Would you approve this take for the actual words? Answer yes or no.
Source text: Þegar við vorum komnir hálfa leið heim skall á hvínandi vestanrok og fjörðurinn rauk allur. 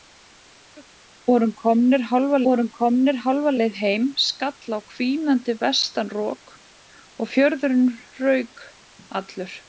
no